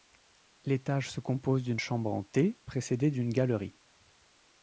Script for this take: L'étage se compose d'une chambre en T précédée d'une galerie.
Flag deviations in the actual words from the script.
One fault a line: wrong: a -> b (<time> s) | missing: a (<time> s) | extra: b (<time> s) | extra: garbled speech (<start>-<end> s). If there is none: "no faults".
no faults